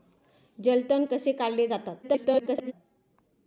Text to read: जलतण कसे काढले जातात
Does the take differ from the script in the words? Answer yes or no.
yes